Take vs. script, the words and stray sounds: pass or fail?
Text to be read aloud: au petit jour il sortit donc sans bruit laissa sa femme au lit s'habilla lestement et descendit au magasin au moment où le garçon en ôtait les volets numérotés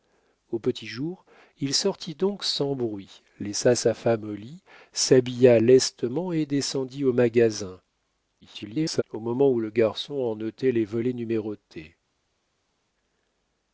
fail